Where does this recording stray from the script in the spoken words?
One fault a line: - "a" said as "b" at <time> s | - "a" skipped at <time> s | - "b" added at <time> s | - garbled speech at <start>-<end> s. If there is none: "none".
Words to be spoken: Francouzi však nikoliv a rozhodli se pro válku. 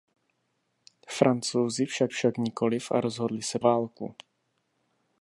- "však" added at 2.1 s
- "pro" skipped at 3.6 s